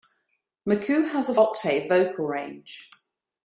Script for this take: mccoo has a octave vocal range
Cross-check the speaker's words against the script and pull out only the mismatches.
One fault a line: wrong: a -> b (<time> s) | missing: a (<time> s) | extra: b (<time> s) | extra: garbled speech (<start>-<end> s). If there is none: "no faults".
no faults